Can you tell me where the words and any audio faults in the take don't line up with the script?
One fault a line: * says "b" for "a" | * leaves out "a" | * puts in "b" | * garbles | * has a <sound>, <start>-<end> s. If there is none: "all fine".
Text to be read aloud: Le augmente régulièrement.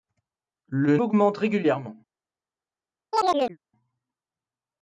* has a chirp, 3.1-3.6 s